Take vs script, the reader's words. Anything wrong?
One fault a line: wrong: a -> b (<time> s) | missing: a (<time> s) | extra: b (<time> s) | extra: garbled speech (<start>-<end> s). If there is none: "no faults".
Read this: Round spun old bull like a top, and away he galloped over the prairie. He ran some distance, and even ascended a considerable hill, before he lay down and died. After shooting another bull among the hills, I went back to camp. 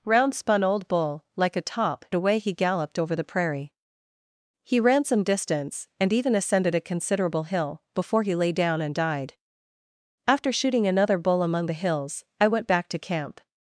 missing: and (2.0 s)